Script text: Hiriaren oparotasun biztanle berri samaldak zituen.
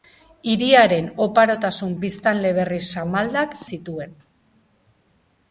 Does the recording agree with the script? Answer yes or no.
yes